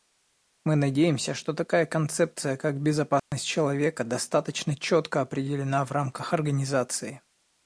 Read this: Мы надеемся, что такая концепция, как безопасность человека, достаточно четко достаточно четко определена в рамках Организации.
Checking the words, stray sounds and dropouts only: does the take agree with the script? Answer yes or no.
no